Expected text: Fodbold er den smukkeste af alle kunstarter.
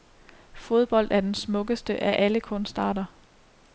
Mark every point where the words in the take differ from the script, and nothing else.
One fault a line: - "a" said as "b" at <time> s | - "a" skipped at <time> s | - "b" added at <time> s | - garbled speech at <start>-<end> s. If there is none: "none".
none